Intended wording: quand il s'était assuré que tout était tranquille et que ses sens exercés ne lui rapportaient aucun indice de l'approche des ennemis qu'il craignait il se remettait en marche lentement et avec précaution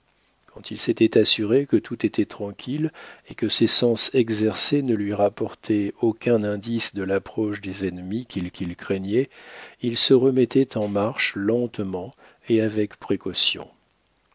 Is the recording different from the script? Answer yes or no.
yes